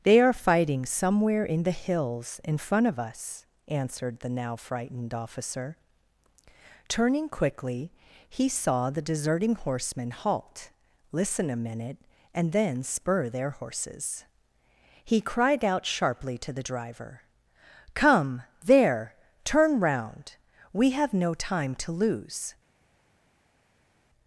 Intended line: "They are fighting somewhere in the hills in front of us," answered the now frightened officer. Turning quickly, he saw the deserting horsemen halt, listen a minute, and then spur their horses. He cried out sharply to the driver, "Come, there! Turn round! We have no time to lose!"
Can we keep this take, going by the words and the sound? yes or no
yes